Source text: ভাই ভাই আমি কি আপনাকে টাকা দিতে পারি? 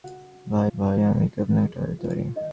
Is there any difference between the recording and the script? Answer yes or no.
no